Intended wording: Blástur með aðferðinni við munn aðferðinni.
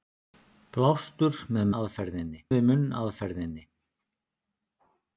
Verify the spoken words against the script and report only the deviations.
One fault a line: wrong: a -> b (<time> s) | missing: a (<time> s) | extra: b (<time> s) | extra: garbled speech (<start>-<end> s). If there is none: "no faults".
no faults